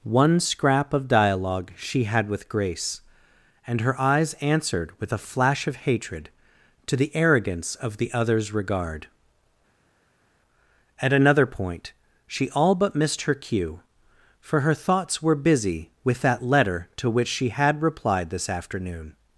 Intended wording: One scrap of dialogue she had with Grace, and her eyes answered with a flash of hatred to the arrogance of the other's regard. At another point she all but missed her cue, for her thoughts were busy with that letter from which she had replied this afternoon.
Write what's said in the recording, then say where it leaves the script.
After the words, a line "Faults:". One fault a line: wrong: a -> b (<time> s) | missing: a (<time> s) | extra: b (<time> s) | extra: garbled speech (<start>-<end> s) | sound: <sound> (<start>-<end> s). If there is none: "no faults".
One scrap of dialogue she had with Grace, and her eyes answered with a flash of hatred to the arrogance of the other's regard. At another point she all but missed her cue, for her thoughts were busy with that letter to which she had replied this afternoon.
Faults:
wrong: from -> to (17.0 s)